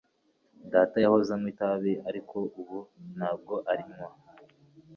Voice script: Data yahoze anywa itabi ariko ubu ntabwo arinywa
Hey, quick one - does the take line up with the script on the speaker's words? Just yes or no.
yes